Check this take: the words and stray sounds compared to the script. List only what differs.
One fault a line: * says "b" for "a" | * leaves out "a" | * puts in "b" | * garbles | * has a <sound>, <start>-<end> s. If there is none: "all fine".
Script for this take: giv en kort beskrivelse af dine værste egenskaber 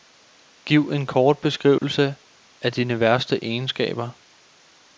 * has a dropout, 1.8-1.8 s